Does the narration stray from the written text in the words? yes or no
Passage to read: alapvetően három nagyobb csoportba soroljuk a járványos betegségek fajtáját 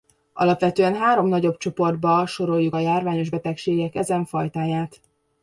yes